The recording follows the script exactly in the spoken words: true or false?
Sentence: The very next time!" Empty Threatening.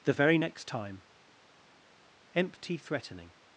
true